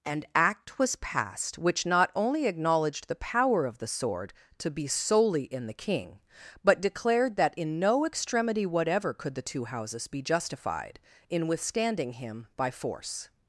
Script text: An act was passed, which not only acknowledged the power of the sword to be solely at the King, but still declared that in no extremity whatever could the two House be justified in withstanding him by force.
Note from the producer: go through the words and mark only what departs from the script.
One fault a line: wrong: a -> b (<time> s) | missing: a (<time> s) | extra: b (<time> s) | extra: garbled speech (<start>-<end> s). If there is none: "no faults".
wrong: at -> in (5.4 s)
missing: still (6.8 s)
wrong: House -> Houses (9.7 s)